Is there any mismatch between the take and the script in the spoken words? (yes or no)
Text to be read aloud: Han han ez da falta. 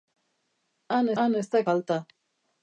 no